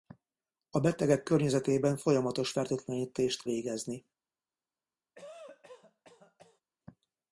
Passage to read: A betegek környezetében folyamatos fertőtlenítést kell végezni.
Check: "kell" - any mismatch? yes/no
yes